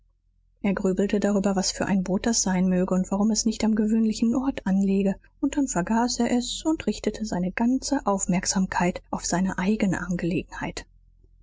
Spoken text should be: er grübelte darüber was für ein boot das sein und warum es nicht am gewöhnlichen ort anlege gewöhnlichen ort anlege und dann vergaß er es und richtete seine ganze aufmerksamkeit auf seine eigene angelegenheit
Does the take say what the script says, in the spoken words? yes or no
no